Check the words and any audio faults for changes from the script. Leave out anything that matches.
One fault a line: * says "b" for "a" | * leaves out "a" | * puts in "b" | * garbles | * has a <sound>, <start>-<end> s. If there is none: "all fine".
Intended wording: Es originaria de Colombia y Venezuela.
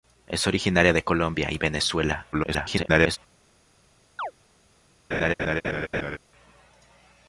* garbles
* has a chirp, 4.2-4.3 s
* has a laugh, 5.1-6.2 s